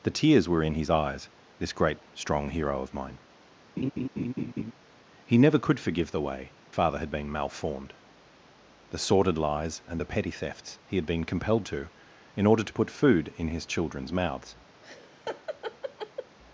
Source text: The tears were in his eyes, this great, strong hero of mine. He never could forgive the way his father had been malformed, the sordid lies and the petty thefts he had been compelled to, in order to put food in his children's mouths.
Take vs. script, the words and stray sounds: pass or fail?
fail